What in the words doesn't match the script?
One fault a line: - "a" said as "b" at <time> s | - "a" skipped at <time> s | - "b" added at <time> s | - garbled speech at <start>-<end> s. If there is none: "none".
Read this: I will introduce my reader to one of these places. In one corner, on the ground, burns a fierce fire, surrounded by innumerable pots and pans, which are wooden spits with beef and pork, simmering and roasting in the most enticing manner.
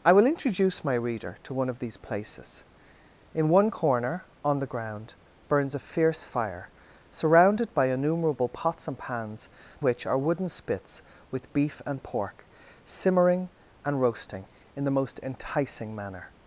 none